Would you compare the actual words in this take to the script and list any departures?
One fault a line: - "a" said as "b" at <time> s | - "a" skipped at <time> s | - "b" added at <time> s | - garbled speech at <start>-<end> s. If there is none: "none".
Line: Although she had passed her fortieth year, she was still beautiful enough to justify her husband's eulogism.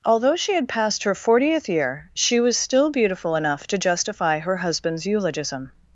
none